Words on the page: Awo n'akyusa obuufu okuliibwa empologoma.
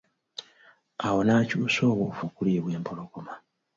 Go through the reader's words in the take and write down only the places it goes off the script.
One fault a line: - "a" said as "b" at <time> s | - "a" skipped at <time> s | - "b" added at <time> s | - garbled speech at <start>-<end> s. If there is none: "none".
none